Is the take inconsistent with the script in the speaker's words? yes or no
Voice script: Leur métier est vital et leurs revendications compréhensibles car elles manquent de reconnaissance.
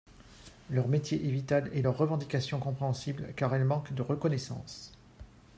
no